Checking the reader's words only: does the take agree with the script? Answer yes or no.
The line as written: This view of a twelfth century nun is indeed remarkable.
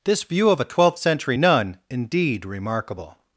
no